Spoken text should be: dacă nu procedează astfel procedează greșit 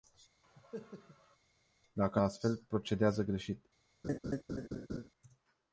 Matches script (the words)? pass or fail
fail